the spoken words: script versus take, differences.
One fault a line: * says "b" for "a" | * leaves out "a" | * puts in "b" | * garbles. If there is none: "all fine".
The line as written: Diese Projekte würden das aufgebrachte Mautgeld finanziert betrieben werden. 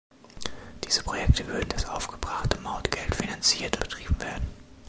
all fine